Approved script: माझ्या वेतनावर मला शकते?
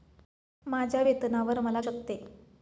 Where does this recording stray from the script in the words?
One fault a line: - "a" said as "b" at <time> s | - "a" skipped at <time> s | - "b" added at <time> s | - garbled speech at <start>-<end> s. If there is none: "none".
none